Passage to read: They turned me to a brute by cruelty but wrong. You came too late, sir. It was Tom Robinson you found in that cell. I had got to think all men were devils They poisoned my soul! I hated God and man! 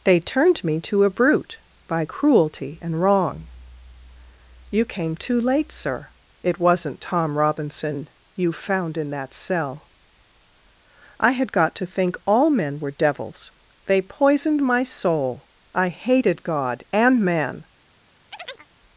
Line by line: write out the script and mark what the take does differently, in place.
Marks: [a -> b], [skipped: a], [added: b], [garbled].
They turned me to a brute by cruelty [but -> and] wrong. You came too late, sir. It [was -> wasn't] Tom Robinson you found in that cell. I had got to think all men were devils They poisoned my soul! I hated God and man!